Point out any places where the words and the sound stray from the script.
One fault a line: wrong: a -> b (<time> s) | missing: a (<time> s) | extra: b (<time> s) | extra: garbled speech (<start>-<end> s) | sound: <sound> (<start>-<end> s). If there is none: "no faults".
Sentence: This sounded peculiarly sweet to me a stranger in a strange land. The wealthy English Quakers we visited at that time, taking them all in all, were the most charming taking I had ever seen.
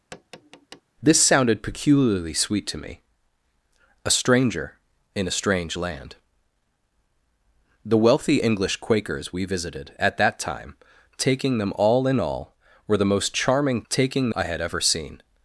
sound: tap (0.1-0.8 s)